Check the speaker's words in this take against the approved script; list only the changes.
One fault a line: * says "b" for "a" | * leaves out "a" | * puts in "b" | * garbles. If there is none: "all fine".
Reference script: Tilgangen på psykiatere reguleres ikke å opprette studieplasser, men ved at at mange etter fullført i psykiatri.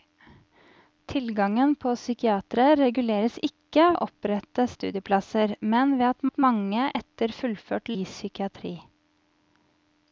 all fine